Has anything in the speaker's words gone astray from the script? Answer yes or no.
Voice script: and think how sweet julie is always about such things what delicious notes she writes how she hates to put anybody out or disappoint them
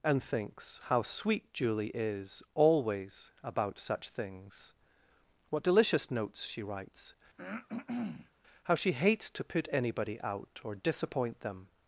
yes